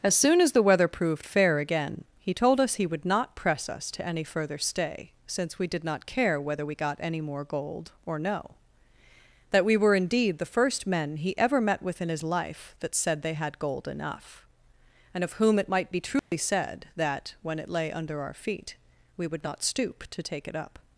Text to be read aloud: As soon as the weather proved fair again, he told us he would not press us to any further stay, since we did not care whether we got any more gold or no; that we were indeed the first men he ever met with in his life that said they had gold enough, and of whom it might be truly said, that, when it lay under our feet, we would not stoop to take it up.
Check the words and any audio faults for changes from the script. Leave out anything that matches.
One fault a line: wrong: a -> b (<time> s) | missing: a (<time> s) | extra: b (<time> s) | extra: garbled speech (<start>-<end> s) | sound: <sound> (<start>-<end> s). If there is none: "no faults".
sound: dropout (16.2-16.3 s)